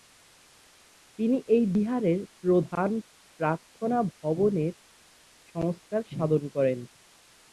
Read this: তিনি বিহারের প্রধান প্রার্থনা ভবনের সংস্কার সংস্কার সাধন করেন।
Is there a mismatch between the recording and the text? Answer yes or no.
yes